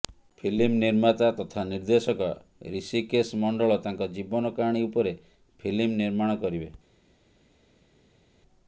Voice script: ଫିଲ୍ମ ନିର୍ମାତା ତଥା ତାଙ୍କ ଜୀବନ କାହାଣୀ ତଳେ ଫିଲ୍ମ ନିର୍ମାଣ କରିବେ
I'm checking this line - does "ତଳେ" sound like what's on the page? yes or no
no